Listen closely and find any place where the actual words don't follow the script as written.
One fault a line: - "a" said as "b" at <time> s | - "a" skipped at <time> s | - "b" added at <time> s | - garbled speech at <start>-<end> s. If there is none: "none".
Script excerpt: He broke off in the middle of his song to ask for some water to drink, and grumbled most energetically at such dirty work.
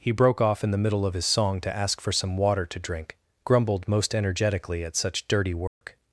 - "and" skipped at 3.2 s